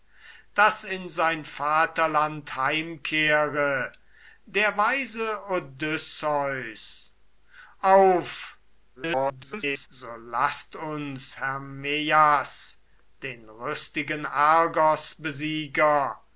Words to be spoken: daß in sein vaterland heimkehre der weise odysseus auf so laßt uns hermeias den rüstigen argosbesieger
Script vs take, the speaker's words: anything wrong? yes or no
yes